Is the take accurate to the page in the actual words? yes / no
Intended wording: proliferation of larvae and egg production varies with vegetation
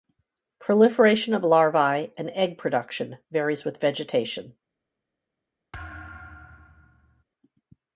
yes